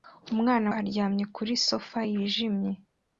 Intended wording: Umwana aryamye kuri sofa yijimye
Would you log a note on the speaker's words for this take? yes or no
no